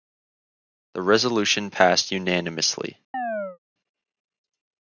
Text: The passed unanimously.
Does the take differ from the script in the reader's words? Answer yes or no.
yes